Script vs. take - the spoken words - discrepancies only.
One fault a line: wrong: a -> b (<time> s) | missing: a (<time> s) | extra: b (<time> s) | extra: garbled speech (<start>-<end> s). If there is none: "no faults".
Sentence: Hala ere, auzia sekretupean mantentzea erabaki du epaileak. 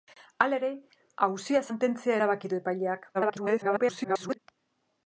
missing: sekretupean (1.6 s)
extra: garbled speech (3.1-4.4 s)